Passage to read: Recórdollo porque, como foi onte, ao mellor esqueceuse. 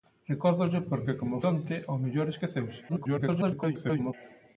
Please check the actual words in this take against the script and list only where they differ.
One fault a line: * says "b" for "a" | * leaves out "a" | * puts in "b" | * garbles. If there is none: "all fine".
* leaves out "foi"
* garbles